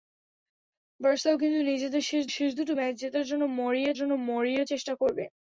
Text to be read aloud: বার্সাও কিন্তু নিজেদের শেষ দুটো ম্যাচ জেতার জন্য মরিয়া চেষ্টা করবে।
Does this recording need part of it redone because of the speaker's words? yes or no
yes